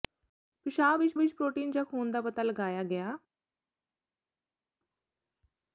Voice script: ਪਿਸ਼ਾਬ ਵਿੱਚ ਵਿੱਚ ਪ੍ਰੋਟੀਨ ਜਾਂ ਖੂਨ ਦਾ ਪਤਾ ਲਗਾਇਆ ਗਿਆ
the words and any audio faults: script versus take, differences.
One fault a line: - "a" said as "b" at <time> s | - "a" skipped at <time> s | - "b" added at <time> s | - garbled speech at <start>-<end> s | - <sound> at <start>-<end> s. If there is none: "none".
none